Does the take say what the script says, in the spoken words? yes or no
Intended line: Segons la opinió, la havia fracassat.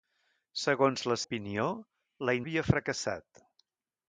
yes